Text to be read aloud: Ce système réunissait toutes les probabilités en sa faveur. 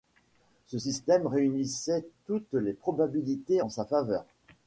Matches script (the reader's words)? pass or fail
pass